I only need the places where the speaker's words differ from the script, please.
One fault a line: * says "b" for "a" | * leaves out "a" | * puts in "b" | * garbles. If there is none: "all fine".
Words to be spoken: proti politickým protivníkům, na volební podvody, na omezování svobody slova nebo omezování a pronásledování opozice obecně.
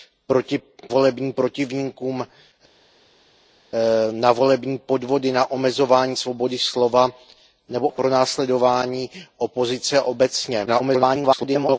* says "volební" for "politickým"
* leaves out "omezování"
* garbles